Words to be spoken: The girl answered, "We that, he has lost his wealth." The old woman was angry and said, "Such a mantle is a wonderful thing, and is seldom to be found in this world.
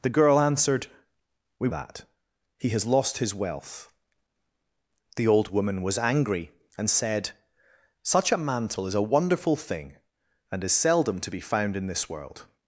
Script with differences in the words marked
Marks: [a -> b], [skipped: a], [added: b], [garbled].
The girl answered, "We that, he has lost his wealth." The old woman was angry and said, "Such a mantle is a wonderful thing, and is seldom to be found in this world.